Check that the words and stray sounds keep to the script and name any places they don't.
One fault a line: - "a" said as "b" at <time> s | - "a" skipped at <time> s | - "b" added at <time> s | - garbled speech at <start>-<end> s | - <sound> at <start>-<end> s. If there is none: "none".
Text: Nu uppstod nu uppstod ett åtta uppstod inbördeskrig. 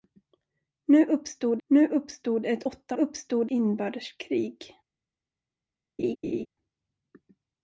- laugh at 6.0-6.5 s